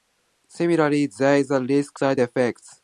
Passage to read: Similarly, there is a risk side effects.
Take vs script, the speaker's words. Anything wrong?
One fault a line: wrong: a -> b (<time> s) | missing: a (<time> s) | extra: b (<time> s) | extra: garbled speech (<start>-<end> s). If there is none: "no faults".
no faults